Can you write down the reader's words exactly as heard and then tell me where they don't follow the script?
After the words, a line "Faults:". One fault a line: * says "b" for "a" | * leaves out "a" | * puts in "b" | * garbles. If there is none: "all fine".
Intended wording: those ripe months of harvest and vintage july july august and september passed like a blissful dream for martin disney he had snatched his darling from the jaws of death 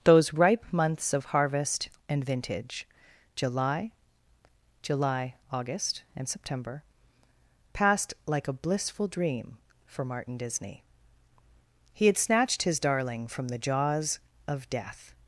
those ripe months of harvest and vintage july july august and september passed like a blissful dream for martin disney he had snatched his darling from the jaws of death
Faults:
all fine